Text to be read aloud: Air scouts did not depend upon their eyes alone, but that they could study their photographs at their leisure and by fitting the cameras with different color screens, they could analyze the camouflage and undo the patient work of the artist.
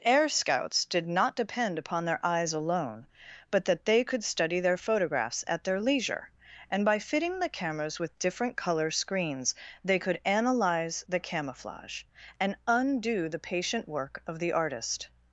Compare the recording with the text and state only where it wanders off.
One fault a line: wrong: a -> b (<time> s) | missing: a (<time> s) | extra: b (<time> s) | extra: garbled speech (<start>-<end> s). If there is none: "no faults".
no faults